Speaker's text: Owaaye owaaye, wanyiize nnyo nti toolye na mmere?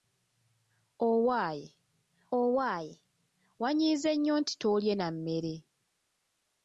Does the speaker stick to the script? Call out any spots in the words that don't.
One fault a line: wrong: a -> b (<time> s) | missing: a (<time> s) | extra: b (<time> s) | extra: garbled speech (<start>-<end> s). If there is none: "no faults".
no faults